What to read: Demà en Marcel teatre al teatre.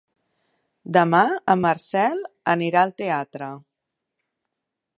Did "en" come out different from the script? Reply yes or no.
no